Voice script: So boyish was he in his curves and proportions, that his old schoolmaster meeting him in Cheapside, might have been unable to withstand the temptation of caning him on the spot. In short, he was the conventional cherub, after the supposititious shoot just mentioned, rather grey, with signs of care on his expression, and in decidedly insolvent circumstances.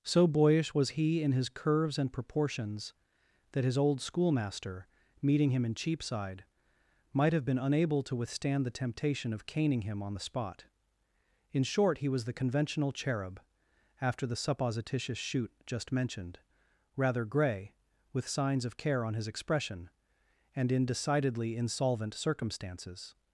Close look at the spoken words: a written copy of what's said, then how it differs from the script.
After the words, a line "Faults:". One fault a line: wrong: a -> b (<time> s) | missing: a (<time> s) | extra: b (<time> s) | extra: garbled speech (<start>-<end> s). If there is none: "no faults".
So boyish was he in his curves and proportions, that his old schoolmaster meeting him in Cheapside, might have been unable to withstand the temptation of caning him on the spot. In short, he was the conventional cherub, after the supposititious shoot just mentioned, rather grey, with signs of care on his expression, and in decidedly insolvent circumstances.
Faults:
no faults